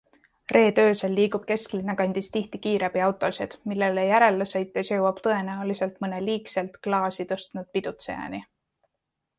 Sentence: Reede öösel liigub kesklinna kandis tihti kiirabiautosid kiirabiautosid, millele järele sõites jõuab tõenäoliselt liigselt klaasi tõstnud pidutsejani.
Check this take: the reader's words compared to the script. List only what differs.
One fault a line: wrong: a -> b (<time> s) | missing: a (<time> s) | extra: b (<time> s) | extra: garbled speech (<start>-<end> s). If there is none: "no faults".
missing: kiirabiautosid (3.5 s)
extra: mõne (6.1 s)